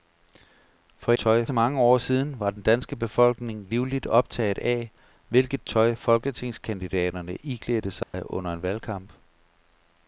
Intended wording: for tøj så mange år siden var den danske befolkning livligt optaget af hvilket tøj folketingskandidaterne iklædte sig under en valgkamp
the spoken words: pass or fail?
pass